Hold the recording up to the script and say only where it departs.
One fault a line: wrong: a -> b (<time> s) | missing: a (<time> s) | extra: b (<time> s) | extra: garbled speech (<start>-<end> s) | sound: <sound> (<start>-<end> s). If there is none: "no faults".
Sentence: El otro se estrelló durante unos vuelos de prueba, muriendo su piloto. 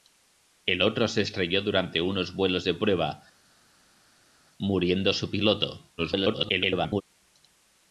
extra: garbled speech (6.0-7.0 s)